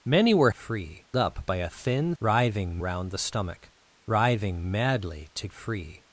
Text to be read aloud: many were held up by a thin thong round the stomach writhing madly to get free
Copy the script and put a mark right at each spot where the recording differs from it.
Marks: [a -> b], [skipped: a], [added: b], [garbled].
many were [held -> free] up by a thin [thong -> writhing] round the stomach writhing madly to [skipped: get] free